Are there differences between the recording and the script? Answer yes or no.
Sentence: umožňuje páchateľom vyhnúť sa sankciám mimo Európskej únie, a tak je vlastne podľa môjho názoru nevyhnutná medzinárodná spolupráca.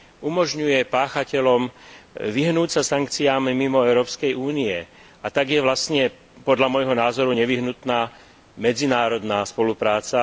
no